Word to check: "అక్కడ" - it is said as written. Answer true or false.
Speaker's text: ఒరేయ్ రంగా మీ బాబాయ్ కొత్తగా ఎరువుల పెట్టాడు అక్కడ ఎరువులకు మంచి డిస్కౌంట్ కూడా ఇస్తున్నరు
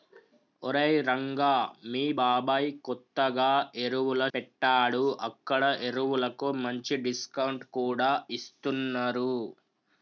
true